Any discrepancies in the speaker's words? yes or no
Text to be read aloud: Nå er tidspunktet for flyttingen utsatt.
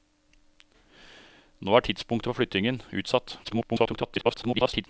yes